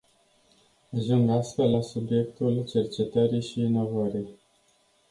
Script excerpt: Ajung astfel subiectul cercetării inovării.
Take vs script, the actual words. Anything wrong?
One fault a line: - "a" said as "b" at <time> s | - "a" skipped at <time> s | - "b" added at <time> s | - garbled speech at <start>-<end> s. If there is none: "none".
- "la" added at 1.7 s
- "și" added at 3.4 s